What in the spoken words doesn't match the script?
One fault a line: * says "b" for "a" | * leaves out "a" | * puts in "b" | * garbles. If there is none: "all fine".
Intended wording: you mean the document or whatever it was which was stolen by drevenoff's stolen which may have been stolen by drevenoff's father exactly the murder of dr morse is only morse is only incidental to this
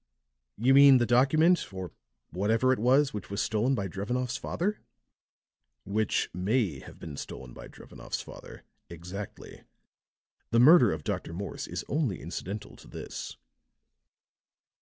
* says "father" for "stolen"
* leaves out "morse is only"